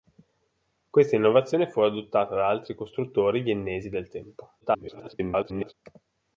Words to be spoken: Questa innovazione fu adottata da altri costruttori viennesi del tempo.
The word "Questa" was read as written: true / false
true